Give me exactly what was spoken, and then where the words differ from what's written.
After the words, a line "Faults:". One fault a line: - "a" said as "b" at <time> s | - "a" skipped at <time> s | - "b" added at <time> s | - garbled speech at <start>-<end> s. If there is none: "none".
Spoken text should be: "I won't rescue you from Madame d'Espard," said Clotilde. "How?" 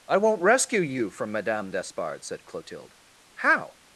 "I won't rescue you from Madame d'Espard," said Clotilde. "How?"
Faults:
none